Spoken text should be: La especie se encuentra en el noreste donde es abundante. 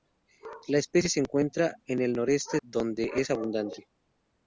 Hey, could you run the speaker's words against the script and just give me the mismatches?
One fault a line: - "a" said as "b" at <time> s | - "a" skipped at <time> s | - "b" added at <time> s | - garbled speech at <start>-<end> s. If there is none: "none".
none